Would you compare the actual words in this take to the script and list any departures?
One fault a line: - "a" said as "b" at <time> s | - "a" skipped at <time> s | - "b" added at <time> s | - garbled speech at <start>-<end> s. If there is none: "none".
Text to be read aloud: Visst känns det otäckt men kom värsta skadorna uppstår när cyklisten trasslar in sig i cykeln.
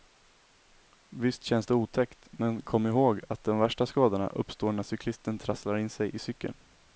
- "ihåg att de" added at 2.9 s